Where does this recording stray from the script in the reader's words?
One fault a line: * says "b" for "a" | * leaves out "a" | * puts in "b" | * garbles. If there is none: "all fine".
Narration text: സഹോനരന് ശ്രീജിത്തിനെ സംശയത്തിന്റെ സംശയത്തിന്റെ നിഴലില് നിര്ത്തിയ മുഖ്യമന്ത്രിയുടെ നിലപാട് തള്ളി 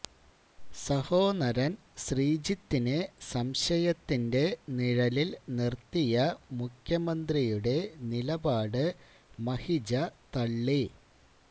* leaves out "സംശയത്തിന്റെ"
* puts in "മഹിജ"